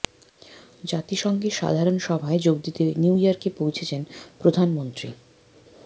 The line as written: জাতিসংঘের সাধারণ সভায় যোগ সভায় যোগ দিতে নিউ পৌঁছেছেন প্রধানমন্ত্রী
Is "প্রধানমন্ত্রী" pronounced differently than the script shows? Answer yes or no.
no